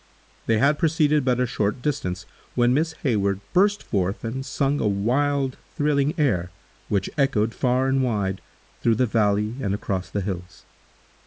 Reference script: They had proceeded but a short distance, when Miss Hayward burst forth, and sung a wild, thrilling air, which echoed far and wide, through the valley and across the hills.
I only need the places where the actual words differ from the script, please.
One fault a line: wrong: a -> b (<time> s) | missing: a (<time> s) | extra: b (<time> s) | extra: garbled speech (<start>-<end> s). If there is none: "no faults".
no faults